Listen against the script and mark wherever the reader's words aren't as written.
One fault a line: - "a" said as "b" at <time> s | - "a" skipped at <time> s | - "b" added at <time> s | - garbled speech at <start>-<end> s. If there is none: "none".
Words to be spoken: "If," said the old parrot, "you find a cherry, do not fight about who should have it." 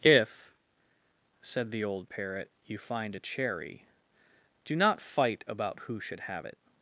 none